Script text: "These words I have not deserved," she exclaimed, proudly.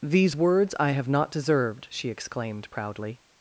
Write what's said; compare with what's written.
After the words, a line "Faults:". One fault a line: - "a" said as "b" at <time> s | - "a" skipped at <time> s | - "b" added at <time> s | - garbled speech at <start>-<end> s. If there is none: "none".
"These words I have not deserved," she exclaimed, proudly.
Faults:
none